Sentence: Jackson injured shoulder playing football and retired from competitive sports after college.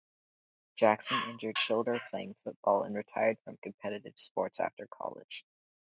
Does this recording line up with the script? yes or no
yes